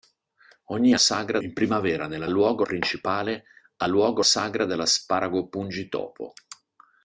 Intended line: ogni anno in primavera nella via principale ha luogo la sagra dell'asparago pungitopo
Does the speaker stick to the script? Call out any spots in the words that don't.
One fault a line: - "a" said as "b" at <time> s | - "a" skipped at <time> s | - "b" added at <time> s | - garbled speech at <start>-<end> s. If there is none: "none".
- "anno" said as "sagra" at 1.0 s
- "via" said as "luogo" at 2.3 s
- "la" skipped at 4.2 s